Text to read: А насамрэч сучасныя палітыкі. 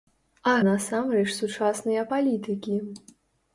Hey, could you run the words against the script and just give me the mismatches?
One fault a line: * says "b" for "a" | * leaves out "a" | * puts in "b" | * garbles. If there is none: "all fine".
all fine